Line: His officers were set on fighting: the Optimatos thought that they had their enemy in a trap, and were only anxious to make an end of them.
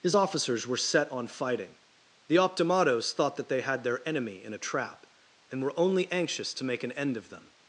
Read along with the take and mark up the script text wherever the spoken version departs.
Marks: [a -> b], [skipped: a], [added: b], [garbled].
His officers were set on fighting: the Optimatos thought that they had their enemy in a trap, and were only anxious to make an end of them.